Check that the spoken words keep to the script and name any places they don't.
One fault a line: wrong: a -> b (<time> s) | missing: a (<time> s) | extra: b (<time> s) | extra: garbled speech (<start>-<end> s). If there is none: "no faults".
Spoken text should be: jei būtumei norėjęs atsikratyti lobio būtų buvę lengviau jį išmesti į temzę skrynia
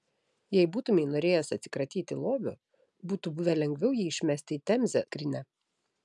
no faults